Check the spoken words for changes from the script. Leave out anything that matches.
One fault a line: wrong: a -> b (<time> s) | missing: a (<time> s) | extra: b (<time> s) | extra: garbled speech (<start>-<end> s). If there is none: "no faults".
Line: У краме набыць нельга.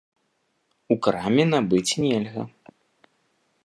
no faults